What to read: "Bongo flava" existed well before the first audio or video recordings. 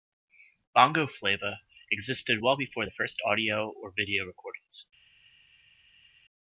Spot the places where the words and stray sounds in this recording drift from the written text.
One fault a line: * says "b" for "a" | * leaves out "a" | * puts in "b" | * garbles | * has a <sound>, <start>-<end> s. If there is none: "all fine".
all fine